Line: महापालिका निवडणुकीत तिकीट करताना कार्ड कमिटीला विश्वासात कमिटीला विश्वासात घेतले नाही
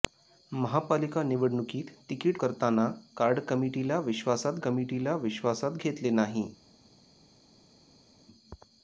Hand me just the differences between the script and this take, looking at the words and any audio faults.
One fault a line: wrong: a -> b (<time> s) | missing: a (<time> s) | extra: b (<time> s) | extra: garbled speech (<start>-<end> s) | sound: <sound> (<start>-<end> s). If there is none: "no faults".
no faults